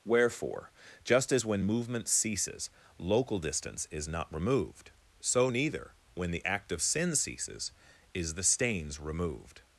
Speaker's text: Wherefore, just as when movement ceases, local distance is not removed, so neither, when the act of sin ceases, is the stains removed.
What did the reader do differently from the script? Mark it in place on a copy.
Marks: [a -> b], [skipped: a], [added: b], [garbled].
Wherefore, just as when movement ceases, local distance is not removed, so neither, when the act of sin ceases, is the stains removed.